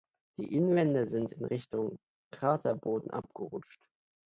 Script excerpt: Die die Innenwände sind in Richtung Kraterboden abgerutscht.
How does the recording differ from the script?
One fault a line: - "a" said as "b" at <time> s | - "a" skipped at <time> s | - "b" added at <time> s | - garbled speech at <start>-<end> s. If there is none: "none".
- "die" skipped at 0.6 s